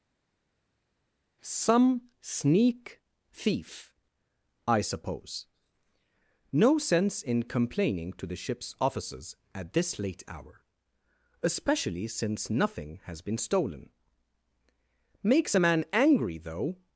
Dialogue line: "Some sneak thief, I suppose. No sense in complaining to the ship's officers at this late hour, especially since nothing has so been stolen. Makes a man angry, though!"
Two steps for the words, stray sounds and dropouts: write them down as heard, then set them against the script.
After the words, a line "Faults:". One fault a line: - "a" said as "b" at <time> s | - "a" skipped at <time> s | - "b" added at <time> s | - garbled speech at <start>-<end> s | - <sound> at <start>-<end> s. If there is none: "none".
"Some sneak thief, I suppose. No sense in complaining to the ship's officers at this late hour, especially since nothing has been stolen. Makes a man angry, though!"
Faults:
- "so" skipped at 13.2 s